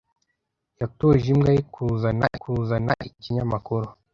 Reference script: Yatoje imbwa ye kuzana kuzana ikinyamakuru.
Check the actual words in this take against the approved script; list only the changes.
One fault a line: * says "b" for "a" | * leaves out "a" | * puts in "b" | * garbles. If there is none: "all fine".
all fine